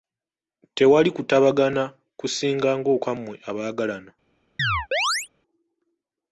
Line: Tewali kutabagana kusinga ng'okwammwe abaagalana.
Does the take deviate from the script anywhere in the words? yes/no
no